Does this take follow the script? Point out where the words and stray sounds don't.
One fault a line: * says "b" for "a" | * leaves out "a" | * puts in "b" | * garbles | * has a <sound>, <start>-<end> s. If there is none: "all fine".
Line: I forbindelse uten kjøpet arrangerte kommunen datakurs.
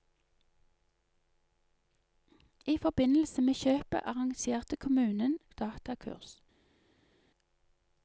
* says "med" for "uten"